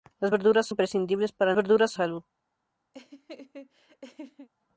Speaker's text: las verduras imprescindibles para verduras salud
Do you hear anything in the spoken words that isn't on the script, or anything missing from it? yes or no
no